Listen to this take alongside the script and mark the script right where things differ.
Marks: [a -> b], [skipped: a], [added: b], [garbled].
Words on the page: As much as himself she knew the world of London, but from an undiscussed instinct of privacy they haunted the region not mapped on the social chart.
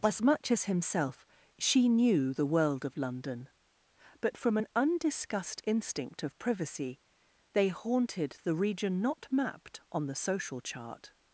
As much as himself she knew the world of London, but from an undiscussed instinct of privacy they haunted the region not mapped on the social chart.